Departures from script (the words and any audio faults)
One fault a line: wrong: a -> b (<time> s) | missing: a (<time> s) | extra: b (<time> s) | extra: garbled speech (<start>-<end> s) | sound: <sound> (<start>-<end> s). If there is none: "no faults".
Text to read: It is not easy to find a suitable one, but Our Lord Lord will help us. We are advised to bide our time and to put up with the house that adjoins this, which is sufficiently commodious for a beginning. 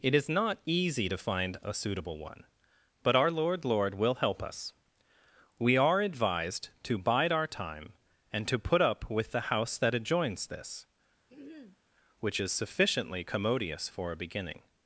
sound: throat clearing (11.3-11.8 s)